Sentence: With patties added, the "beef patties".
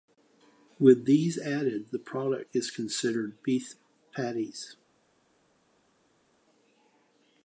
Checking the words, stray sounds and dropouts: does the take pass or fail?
fail